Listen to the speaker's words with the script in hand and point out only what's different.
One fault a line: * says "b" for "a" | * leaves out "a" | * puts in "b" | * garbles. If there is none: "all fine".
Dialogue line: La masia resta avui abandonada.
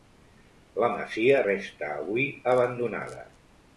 all fine